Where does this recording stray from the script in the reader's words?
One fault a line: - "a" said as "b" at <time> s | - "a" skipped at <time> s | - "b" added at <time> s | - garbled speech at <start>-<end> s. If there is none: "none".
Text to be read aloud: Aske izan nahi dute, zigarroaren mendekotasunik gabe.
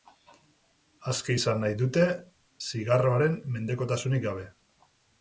none